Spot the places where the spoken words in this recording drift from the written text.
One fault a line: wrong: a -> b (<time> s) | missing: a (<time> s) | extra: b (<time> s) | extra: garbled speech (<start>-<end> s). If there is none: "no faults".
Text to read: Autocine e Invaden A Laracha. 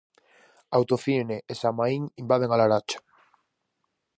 extra: Samaín (1.6 s)